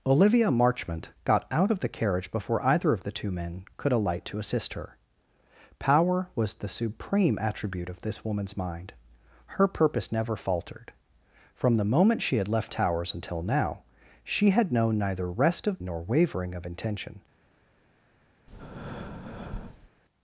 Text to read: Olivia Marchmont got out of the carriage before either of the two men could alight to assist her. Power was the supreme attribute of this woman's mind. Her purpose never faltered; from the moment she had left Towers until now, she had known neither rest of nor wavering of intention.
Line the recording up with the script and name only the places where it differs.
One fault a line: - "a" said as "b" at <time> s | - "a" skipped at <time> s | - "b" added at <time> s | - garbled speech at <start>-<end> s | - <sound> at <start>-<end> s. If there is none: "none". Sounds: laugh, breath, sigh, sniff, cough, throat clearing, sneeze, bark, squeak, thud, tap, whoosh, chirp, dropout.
- breath at 18.5-19.9 s